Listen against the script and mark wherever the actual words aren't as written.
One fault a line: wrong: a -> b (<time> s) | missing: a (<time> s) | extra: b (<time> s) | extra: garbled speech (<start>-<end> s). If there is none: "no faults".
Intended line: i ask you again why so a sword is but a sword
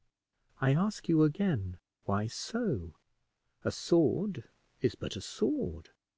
no faults